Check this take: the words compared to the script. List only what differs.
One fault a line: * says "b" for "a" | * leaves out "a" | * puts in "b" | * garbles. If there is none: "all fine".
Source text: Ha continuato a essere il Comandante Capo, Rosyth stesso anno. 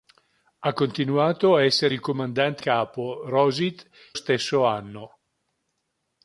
all fine